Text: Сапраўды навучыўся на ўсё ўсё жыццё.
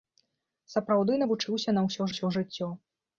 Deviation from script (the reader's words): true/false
false